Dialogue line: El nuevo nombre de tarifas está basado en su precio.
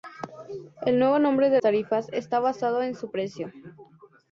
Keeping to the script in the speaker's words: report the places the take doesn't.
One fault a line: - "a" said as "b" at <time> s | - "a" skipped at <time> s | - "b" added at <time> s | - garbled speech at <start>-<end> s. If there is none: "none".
none